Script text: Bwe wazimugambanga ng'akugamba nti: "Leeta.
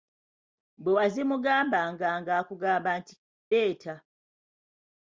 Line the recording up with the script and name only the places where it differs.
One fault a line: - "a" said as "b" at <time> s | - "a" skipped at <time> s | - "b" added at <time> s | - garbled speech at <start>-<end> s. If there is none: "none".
none